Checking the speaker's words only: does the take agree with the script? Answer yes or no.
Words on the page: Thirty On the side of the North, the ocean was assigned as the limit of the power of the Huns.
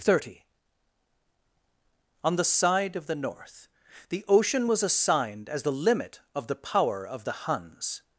yes